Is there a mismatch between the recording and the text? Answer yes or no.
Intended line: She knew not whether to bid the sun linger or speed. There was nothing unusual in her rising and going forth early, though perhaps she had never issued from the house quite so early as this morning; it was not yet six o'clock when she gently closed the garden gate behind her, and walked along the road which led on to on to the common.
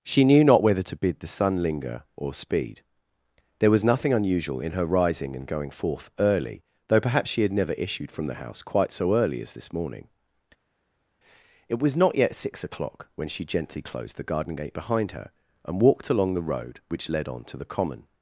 yes